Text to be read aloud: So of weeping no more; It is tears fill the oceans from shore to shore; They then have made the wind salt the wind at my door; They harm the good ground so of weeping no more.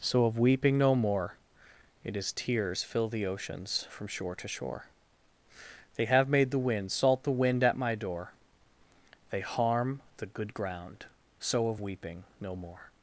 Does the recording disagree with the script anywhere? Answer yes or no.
yes